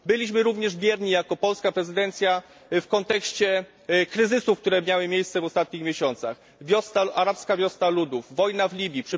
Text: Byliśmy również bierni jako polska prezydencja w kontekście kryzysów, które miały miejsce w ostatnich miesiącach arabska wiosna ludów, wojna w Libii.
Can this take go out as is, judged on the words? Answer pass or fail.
pass